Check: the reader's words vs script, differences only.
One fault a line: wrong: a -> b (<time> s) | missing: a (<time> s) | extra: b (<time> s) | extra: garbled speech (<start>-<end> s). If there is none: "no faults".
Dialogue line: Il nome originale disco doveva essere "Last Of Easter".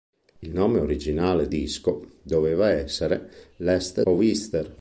no faults